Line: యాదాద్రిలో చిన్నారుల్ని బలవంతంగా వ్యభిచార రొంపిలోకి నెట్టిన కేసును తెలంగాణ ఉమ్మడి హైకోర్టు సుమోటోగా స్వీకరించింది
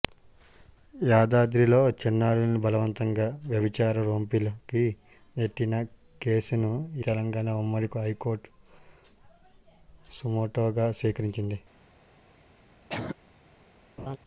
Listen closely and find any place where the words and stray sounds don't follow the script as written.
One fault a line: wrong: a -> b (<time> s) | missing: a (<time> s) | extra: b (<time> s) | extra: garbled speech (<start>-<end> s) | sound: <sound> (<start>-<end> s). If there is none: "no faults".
sound: cough (12.9-13.2 s)
sound: laugh (14.0-14.2 s)